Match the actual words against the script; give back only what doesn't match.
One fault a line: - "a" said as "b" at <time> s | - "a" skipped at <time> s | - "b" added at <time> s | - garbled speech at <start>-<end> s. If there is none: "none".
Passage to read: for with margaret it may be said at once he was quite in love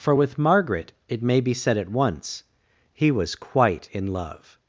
none